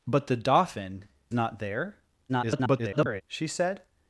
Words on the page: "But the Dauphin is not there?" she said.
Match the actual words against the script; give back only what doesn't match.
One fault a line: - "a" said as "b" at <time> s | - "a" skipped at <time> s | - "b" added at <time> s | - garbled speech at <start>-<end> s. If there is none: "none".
- "is" skipped at 1.1 s
- garbled speech at 2.3-3.2 s